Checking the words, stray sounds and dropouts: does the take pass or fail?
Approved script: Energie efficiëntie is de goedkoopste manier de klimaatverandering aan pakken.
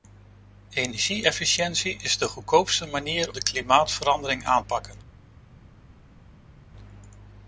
pass